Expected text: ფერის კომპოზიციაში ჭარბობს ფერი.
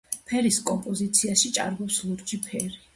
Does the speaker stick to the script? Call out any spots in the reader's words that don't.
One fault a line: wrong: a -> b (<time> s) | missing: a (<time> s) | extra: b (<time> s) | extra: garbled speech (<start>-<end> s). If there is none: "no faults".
extra: ლურჯი (2.1 s)